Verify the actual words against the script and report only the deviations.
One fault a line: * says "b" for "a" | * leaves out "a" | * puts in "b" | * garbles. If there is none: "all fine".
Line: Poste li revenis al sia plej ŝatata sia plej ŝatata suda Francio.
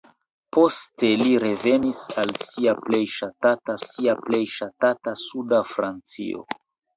all fine